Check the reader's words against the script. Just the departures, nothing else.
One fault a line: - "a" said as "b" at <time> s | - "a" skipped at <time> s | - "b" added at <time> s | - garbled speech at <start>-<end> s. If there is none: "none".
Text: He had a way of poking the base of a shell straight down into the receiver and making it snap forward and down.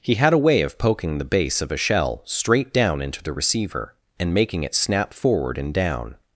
none